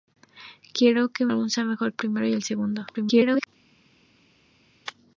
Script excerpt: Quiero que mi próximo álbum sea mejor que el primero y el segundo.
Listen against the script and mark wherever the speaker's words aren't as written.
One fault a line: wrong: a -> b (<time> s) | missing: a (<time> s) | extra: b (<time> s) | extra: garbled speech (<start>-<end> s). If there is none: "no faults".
missing: mi próximo (1.3 s)
missing: que (1.9 s)
extra: garbled speech (2.9-3.5 s)